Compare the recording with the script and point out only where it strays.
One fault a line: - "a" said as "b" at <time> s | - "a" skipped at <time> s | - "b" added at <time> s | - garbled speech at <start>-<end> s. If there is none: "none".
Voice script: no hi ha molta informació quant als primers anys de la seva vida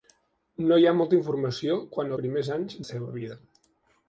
- "als" skipped at 2.2 s
- "de" skipped at 2.8 s